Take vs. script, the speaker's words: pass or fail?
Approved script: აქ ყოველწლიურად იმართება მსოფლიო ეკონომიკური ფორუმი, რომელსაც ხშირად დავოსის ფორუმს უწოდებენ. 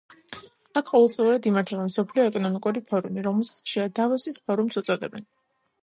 pass